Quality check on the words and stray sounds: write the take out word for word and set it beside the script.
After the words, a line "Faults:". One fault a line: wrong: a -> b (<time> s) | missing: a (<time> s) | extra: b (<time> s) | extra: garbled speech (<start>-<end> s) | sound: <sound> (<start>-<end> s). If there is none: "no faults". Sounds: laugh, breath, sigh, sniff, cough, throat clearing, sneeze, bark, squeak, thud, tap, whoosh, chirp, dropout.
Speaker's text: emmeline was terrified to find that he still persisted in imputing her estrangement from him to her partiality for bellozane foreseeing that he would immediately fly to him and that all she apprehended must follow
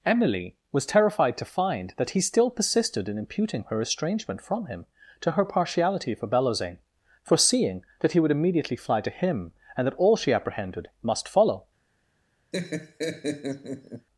emily was terrified to find that he still persisted in imputing her estrangement from him to her partiality for bellozane foreseeing that he would immediately fly to him and that all she apprehended must follow
Faults:
wrong: emmeline -> emily (0.1 s)
sound: laugh (12.5-14.1 s)